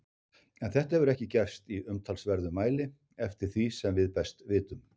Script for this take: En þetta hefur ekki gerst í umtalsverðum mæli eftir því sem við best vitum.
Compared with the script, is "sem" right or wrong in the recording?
right